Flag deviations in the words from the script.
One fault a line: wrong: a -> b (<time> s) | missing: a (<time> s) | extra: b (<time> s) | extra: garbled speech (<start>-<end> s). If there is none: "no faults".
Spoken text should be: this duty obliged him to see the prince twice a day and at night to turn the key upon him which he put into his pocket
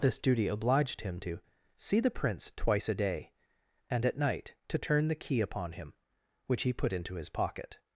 no faults